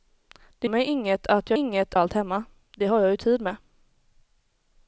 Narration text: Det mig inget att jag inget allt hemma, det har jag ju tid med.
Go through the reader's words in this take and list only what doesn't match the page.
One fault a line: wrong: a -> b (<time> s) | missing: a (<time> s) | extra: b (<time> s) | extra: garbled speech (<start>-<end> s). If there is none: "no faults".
no faults